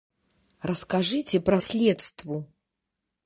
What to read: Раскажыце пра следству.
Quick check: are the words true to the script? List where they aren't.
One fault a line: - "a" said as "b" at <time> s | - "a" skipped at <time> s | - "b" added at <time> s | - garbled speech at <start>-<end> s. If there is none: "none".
none